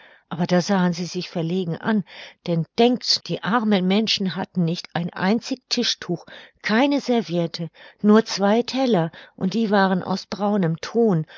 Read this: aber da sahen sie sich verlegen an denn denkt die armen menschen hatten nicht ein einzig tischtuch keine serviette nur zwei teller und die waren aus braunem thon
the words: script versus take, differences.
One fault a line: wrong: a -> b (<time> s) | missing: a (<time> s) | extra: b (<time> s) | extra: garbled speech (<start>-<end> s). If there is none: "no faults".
no faults